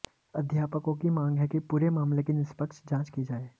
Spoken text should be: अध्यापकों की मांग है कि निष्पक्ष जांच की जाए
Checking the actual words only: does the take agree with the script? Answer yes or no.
no